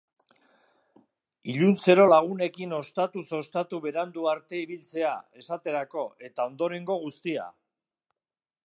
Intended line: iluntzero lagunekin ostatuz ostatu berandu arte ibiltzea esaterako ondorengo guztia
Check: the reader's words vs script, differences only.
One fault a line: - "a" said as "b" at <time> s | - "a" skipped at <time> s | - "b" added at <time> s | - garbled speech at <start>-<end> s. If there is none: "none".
- "eta" added at 6.3 s